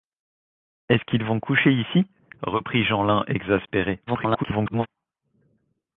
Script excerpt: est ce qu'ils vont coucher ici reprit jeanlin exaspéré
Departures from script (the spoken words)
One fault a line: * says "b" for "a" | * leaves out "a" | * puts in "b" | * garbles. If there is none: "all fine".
* garbles